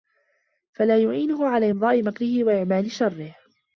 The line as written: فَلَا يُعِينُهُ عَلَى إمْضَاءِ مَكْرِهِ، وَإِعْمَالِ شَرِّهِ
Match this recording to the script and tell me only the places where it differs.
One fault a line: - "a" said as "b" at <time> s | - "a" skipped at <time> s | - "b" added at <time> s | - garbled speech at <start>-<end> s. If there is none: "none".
none